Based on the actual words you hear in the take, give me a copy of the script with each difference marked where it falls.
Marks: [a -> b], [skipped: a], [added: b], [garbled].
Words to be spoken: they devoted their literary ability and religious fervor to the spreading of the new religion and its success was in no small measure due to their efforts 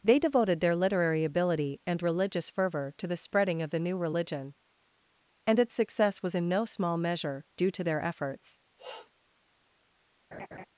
they devoted their literary ability and religious fervor to the spreading of the new religion and its success was in no small measure due to their efforts